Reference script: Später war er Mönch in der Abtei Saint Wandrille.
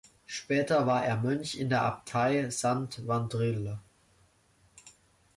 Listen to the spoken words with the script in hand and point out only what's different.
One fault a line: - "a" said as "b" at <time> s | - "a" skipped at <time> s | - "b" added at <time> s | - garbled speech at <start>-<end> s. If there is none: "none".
none